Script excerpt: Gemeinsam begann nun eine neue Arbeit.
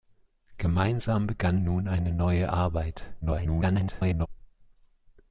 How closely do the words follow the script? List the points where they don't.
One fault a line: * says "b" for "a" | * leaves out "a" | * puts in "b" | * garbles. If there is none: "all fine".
* garbles